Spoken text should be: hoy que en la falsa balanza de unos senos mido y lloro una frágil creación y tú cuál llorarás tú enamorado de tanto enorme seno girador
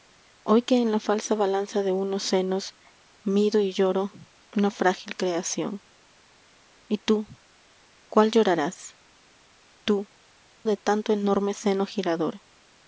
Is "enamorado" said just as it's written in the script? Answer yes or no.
no